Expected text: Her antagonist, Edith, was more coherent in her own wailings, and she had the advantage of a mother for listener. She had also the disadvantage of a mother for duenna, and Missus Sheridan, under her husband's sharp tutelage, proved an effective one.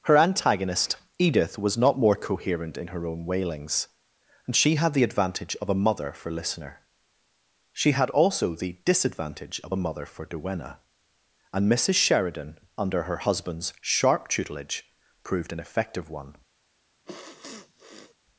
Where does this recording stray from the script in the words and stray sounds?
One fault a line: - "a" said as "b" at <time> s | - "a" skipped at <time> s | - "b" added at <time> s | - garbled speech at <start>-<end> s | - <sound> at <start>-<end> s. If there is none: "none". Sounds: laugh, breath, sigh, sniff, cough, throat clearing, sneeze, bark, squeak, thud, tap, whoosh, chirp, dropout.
- "not" added at 1.8 s
- sniff at 17.1-18.2 s